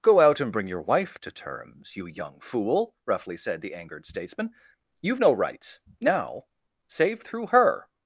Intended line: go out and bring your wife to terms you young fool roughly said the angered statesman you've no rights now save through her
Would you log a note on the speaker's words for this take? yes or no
no